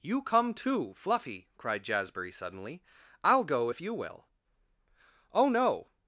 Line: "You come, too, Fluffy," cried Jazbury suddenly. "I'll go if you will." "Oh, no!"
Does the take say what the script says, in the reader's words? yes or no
yes